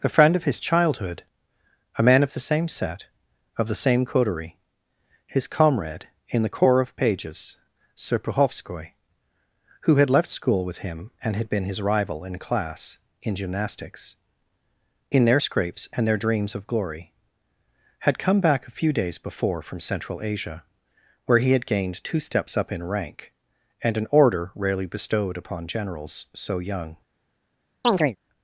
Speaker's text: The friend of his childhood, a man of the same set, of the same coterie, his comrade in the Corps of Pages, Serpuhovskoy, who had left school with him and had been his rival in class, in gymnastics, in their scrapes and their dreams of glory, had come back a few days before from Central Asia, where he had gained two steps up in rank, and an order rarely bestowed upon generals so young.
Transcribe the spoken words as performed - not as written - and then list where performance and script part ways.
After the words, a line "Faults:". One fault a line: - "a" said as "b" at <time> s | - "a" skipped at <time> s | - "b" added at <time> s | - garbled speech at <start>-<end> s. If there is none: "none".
A friend of his childhood, a man of the same set, of the same coterie, his comrade in the Corps of Pages, Serpuhovskoy, who had left school with him and had been his rival in class, in gymnastics, in their scrapes and their dreams of glory, had come back a few days before from Central Asia, where he had gained two steps up in rank, and an order rarely bestowed upon generals so young.
Faults:
- "The" said as "A" at 0.0 s